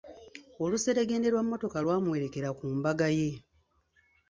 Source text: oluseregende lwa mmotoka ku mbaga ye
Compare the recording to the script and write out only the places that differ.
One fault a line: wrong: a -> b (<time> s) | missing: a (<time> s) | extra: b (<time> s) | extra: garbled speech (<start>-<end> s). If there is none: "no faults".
extra: lwamuwerekera (1.8 s)